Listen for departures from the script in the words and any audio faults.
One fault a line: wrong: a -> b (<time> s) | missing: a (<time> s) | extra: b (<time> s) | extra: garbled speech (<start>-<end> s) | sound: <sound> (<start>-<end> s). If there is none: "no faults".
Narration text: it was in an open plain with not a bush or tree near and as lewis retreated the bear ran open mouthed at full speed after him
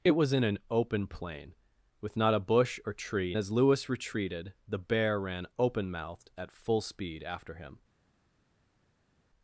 missing: near and (3.4 s)